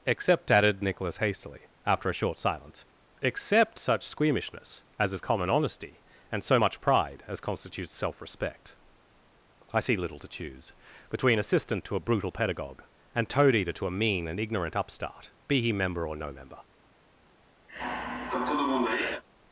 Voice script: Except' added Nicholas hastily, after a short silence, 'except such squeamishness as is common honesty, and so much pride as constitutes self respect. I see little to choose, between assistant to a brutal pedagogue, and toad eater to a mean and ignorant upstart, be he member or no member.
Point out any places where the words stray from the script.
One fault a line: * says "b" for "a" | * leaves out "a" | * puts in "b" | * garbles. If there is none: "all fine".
all fine